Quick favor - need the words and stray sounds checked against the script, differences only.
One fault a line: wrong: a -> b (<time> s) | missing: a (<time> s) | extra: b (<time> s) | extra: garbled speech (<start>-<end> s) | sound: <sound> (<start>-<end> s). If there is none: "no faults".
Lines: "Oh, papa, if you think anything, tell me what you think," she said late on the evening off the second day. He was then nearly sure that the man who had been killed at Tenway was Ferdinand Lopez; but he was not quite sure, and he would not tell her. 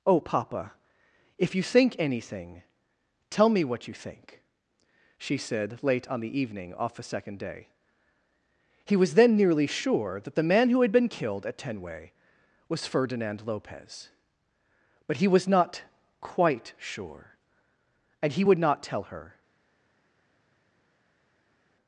no faults